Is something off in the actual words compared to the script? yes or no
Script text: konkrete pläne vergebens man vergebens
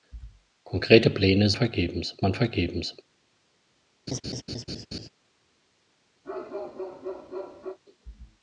no